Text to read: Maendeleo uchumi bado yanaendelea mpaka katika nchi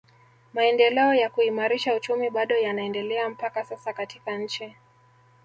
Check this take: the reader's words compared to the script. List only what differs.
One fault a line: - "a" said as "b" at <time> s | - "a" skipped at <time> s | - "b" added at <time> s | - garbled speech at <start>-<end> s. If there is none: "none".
- "ya kuimarisha" added at 1.1 s
- "sasa" added at 3.6 s